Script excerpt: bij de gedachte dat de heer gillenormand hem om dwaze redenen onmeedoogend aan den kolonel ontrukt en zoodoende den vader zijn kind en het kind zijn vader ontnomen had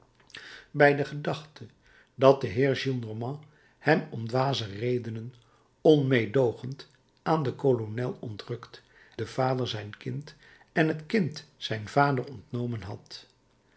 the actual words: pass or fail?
fail